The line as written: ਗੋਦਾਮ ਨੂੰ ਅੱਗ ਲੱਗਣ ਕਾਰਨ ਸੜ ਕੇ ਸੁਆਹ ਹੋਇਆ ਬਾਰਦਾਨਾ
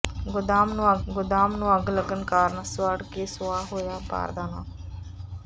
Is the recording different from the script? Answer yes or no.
yes